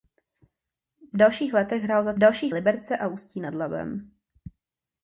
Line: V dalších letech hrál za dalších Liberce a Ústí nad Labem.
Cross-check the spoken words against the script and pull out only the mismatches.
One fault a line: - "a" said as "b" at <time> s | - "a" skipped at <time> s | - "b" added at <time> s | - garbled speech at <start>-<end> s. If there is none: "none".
none